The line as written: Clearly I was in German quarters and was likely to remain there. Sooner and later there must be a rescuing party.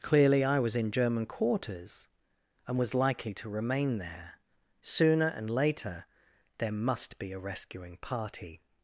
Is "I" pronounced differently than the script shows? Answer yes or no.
no